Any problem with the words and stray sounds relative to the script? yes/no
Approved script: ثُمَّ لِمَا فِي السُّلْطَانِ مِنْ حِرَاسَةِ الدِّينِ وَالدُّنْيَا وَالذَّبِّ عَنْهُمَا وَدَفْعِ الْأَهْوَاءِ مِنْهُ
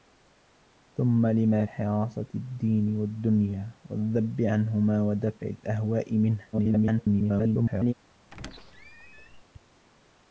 yes